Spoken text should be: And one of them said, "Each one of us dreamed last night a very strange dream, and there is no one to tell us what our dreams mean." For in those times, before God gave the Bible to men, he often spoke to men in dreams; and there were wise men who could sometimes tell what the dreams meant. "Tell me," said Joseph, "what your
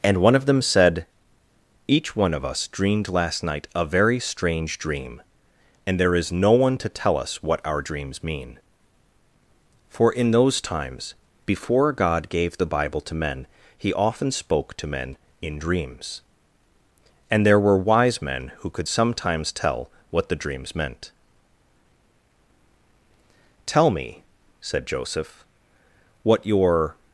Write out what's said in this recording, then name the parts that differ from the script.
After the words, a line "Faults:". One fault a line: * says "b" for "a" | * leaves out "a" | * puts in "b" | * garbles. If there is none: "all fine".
And one of them said, "Each one of us dreamed last night a very strange dream, and there is no one to tell us what our dreams mean." For in those times, before God gave the Bible to men, he often spoke to men in dreams; and there were wise men who could sometimes tell what the dreams meant. "Tell me," said Joseph, "what your
Faults:
all fine